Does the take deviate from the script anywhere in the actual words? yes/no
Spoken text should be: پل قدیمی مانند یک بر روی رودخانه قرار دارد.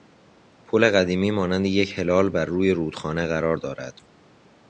yes